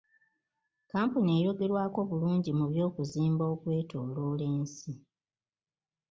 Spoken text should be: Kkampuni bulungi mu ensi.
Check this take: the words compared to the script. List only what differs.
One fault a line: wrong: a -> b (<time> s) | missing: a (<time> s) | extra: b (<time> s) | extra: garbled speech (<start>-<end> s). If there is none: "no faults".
extra: eyogerwako (1.4 s)
extra: by'okuzimba okwetooloola (2.7 s)